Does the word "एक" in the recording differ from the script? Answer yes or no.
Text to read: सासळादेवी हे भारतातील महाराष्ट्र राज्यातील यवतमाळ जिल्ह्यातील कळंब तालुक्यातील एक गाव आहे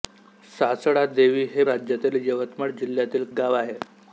yes